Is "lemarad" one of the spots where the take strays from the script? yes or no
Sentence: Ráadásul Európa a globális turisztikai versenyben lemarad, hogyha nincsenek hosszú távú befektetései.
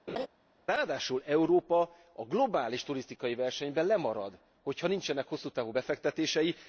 no